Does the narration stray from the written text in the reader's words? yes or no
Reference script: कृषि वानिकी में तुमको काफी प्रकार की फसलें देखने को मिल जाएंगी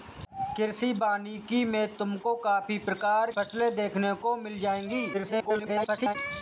yes